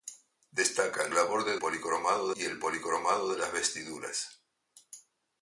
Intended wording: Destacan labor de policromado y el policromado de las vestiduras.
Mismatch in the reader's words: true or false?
false